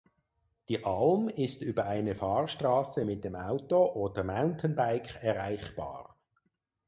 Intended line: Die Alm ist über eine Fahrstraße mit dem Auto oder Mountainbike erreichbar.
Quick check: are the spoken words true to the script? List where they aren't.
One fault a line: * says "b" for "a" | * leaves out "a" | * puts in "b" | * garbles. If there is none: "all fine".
all fine